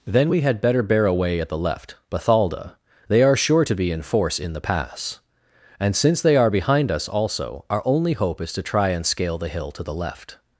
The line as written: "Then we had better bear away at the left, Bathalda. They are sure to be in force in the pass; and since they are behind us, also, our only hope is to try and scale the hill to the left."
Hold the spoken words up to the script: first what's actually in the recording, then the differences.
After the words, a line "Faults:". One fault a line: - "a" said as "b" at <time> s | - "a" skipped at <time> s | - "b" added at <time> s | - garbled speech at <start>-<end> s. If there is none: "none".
"Then we had better bear away at the left, Bathalda. They are sure to be in force in the pass; and since they are behind us, also, our only hope is to try and scale the hill to the left."
Faults:
none